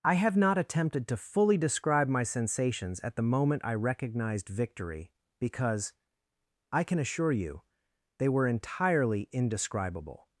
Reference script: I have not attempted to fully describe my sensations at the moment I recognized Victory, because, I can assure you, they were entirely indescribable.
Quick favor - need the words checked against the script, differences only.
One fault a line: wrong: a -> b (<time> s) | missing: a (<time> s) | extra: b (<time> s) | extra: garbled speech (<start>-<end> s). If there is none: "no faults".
no faults